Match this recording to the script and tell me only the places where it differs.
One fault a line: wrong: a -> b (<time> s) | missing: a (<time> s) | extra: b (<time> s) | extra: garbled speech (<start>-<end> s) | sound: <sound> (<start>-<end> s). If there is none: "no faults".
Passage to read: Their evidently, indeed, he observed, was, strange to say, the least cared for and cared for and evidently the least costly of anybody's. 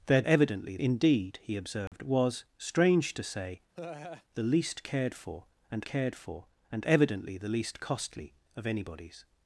sound: dropout (1.9-1.9 s)
sound: laugh (3.7-4.2 s)